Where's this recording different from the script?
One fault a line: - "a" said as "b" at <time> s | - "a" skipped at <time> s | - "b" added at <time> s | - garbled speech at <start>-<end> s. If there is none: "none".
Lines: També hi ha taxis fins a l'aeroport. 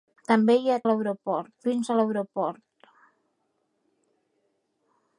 - "taxis" said as "l'aeroport" at 0.9 s